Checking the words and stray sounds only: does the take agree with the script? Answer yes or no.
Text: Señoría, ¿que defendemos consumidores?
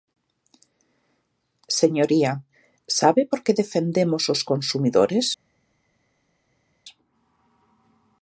no